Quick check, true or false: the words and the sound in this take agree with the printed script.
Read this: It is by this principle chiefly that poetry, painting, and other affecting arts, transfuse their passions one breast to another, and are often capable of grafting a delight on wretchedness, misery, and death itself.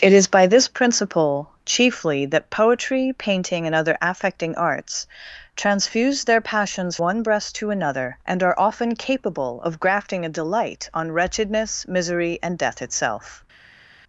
true